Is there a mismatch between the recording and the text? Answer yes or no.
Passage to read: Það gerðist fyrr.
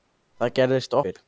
no